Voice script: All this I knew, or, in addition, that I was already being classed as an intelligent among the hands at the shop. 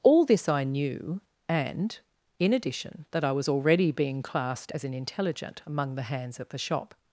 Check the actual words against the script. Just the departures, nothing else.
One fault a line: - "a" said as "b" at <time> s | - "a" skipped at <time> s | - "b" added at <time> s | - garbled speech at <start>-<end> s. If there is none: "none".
- "or" said as "and" at 1.5 s